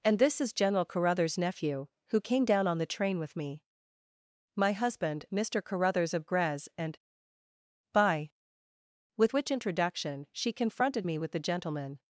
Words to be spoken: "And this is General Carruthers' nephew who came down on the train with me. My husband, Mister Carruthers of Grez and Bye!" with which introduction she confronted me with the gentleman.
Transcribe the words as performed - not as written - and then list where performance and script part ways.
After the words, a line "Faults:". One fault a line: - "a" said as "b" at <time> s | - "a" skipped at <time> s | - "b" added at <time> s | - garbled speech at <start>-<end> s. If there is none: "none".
"And this is General Carruthers' nephew who came down on the train with me. My husband, Mister Carruthers of Grez and Bye!" with which introduction she confronted me with the gentleman.
Faults:
none